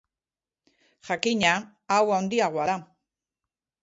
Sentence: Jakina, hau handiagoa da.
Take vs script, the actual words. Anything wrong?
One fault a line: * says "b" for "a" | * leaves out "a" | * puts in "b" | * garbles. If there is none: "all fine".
all fine